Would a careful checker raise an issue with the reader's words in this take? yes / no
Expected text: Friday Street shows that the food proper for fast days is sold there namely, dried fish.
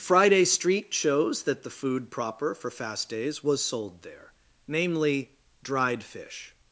yes